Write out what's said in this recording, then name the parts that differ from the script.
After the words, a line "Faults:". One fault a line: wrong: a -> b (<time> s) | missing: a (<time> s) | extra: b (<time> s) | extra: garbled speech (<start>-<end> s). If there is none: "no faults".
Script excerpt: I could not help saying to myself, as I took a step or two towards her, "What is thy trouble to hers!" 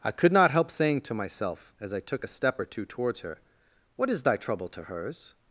I could not help saying to myself, as I took a step or two towards her, "What is thy trouble to hers!"
Faults:
no faults